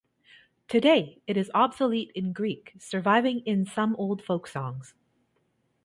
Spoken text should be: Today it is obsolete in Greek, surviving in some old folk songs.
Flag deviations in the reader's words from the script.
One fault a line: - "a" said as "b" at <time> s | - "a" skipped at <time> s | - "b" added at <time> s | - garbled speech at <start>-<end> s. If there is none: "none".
none